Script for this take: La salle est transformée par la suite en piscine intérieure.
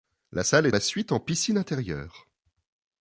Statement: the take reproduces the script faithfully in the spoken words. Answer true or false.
false